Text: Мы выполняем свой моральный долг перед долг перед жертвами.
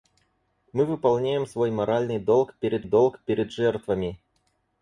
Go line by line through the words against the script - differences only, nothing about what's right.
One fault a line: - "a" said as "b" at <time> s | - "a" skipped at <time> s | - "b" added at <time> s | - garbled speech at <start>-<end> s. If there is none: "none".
none